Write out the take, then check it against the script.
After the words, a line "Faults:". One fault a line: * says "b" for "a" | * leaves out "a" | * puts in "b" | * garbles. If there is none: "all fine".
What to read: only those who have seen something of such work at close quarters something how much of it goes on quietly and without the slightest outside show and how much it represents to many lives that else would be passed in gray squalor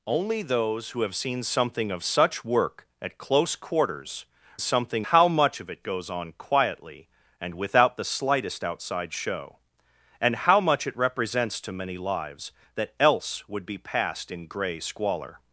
only those who have seen something of such work at close quarters something how much of it goes on quietly and without the slightest outside show and how much it represents to many lives that else would be passed in gray squalor
Faults:
all fine